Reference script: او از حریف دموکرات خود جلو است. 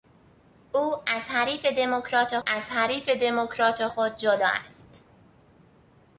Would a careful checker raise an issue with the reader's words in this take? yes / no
yes